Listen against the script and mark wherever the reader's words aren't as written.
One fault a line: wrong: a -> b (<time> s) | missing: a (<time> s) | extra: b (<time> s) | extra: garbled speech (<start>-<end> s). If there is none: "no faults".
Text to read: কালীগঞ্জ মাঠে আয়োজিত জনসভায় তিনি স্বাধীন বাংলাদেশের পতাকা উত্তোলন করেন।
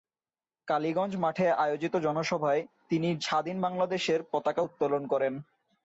no faults